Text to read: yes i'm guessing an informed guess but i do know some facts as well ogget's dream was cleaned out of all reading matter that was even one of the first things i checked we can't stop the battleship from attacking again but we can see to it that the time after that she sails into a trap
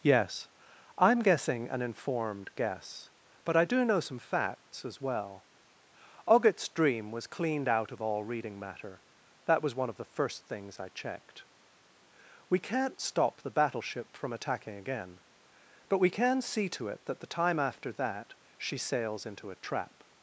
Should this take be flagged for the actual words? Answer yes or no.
yes